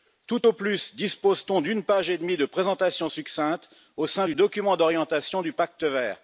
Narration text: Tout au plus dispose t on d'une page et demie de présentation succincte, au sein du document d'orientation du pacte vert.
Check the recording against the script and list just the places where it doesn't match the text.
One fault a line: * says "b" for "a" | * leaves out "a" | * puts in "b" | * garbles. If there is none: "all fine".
all fine